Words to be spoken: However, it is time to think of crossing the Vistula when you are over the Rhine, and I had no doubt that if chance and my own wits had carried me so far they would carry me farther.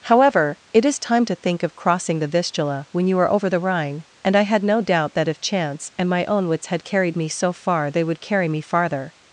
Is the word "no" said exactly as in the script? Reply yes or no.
yes